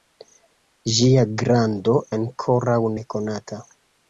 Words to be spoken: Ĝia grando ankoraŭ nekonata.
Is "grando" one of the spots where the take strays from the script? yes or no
no